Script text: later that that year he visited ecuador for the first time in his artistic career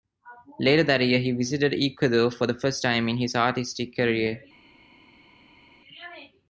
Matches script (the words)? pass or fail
fail